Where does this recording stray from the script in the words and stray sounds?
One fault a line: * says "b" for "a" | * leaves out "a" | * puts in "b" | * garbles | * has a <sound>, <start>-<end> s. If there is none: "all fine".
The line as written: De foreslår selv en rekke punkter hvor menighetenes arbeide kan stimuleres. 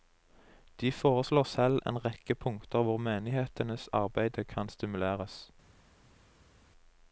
all fine